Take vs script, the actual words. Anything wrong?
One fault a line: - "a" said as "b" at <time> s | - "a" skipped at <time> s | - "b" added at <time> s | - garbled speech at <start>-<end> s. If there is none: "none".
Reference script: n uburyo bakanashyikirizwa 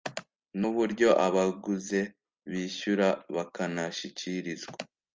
- "abaguze bishyura" added at 1.3 s